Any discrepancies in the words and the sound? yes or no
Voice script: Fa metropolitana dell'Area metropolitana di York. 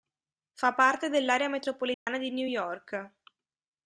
yes